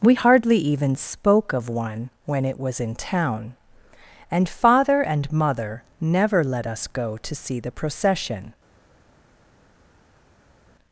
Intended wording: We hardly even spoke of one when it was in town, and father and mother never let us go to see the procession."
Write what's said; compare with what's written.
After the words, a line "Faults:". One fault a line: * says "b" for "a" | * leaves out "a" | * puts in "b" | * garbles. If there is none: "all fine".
We hardly even spoke of one when it was in town, and father and mother never let us go to see the procession."
Faults:
all fine